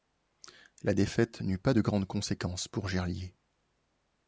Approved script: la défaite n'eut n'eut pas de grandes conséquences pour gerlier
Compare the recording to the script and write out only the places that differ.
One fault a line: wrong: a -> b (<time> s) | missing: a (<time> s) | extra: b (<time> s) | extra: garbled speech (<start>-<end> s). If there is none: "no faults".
missing: n'eut (1.6 s)